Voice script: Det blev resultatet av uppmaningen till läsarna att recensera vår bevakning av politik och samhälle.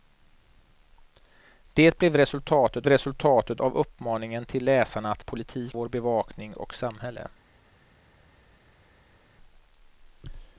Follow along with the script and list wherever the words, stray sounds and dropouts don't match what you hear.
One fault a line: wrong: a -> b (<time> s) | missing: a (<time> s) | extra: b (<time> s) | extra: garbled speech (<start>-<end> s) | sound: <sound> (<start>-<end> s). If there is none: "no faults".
extra: resultatet (2.9 s)
wrong: recensera -> politik (5.2 s)
missing: av politik (6.5 s)